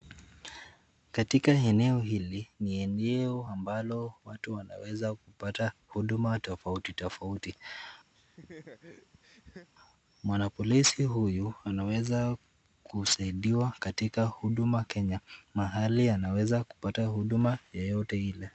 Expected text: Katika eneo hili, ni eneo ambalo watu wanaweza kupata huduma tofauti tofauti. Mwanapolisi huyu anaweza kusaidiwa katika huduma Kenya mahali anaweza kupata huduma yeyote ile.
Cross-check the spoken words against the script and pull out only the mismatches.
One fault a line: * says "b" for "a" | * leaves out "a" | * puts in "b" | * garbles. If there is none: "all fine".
all fine